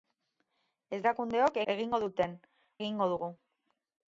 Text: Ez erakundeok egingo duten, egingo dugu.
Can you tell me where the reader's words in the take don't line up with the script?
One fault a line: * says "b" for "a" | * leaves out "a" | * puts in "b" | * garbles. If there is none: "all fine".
all fine